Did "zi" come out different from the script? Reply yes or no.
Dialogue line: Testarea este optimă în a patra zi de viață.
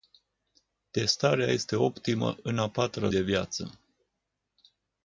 yes